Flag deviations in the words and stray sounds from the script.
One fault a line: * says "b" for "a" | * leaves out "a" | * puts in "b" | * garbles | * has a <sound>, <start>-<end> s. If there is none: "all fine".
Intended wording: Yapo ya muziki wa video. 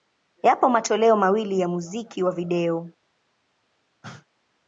* puts in "matoleo mawili"
* has a cough, 4.0-4.3 s